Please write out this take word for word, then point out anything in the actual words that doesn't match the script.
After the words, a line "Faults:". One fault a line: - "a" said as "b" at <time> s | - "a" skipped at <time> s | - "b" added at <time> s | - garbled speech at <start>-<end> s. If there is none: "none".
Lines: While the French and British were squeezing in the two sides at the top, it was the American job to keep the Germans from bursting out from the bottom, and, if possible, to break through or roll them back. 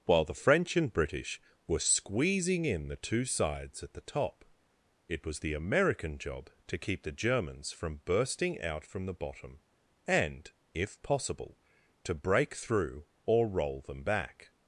While the French and British were squeezing in the two sides at the top, it was the American job to keep the Germans from bursting out from the bottom, and, if possible, to break through or roll them back.
Faults:
none